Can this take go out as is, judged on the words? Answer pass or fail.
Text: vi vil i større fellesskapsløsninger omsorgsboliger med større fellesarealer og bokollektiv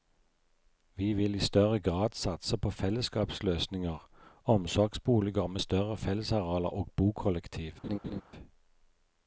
fail